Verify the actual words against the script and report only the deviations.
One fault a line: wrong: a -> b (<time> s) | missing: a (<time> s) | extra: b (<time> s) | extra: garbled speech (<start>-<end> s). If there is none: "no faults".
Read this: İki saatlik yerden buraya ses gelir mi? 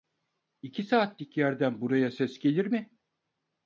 no faults